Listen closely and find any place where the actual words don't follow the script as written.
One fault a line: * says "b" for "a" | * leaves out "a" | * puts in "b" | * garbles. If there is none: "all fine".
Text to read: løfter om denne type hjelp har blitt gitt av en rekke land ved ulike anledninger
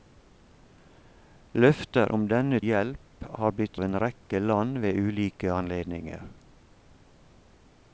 * leaves out "type"
* leaves out "gitt"